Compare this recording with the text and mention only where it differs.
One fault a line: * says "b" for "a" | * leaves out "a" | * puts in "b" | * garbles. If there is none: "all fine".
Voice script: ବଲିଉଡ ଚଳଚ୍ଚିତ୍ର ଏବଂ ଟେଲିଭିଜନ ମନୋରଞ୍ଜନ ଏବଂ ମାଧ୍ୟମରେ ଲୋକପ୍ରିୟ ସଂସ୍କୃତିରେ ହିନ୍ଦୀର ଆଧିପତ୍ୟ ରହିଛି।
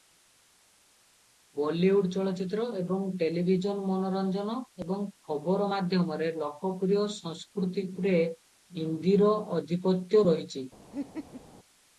* puts in "ଖବର"